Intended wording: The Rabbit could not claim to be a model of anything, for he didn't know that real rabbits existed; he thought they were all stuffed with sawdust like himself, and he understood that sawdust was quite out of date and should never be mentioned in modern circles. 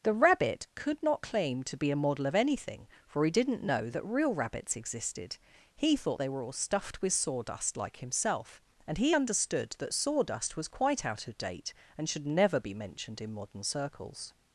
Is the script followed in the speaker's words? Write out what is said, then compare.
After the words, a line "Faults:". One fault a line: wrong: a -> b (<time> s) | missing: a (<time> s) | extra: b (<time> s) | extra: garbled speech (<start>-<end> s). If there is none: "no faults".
The Rabbit could not claim to be a model of anything, for he didn't know that real rabbits existed; he thought they were all stuffed with sawdust like himself, and he understood that sawdust was quite out of date and should never be mentioned in modern circles.
Faults:
no faults